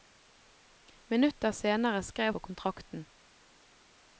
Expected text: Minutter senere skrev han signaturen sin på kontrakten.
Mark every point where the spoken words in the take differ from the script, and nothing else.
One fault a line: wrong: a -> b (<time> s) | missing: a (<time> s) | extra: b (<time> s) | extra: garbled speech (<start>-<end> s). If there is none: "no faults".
missing: han signaturen sin (2.3 s)